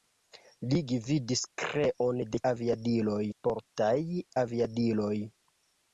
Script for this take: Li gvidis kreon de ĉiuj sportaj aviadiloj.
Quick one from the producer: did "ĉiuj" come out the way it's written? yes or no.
no